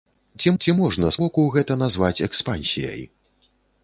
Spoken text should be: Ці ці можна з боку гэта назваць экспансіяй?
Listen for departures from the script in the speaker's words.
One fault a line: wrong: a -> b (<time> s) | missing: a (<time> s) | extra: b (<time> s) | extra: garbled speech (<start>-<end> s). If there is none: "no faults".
no faults